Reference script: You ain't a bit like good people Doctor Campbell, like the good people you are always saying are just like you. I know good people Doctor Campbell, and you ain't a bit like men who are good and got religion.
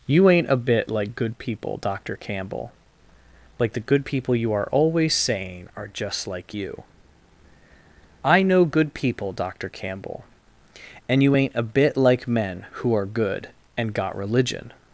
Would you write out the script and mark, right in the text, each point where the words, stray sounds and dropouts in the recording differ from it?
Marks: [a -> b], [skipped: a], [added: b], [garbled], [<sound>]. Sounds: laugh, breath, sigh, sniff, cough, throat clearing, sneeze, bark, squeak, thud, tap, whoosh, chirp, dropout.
You ain't a bit like good people Doctor Campbell, like the good people you are always saying are just like you. I know good people Doctor Campbell, and you ain't a bit like men who are good and got religion.